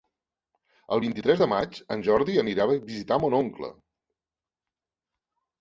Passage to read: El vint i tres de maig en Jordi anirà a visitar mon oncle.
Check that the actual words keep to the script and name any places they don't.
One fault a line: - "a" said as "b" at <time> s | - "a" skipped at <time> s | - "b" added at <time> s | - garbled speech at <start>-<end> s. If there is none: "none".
none